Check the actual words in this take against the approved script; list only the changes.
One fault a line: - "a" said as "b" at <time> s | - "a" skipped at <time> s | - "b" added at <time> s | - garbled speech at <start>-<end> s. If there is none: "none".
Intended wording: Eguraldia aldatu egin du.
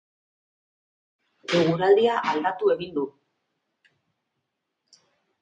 none